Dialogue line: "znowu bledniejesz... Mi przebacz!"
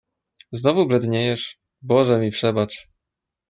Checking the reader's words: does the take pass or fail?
fail